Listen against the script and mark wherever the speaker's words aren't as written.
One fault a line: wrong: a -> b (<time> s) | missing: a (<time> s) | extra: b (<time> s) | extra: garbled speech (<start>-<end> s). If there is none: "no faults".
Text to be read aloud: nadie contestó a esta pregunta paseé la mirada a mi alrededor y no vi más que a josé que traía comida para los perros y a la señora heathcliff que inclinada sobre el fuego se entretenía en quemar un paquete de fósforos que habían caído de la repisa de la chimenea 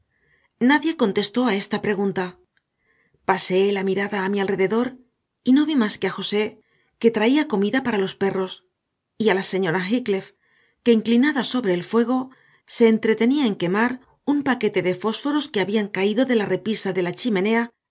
no faults